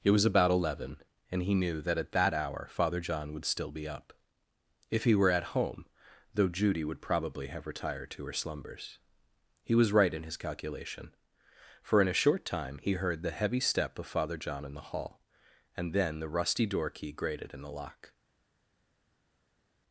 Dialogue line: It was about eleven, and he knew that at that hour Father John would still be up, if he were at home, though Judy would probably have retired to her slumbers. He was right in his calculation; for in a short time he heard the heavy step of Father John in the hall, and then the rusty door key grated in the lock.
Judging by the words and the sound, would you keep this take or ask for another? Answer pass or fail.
pass